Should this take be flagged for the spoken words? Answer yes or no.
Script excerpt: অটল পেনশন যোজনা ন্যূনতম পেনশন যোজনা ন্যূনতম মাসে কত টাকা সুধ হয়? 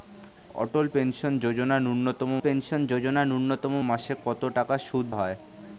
no